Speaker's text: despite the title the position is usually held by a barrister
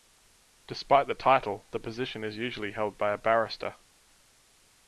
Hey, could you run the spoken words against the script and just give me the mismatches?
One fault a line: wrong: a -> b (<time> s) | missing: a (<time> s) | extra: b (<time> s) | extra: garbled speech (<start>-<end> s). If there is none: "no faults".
no faults